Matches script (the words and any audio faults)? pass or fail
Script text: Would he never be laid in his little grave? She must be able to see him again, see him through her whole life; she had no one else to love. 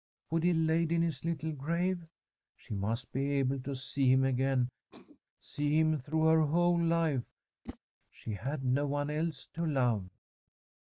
fail